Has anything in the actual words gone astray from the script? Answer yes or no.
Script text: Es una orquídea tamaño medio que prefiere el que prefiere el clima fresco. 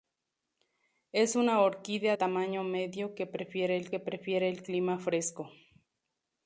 no